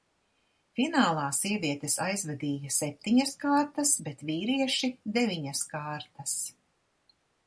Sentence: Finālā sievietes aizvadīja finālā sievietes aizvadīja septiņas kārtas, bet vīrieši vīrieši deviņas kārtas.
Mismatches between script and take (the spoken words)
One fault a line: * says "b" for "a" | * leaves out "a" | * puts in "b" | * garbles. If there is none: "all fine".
* leaves out "finālā sievietes aizvadīja"
* leaves out "vīrieši"